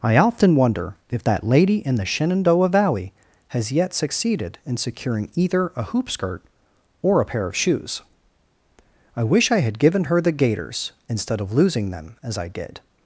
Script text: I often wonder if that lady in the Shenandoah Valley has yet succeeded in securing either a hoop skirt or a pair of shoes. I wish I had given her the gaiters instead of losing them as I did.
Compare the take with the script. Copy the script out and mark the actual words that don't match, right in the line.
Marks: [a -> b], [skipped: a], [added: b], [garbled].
I often wonder if that lady in the Shenandoah Valley has yet succeeded in securing either a hoop skirt or a pair of shoes. I wish I had given her the gaiters instead of losing them as I did.